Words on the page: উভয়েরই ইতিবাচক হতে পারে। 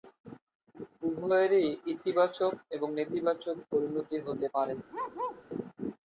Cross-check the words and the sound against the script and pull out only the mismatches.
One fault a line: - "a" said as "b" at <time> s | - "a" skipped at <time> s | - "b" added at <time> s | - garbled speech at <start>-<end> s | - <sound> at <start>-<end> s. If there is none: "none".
- "এবং নেতিবাচক পরিণতি" added at 2.8 s
- bark at 4.9-5.4 s